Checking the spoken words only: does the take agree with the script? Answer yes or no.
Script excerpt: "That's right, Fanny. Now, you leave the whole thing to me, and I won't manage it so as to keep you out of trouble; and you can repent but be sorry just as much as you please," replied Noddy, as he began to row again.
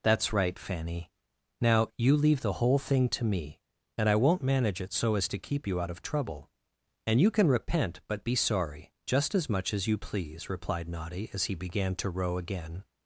yes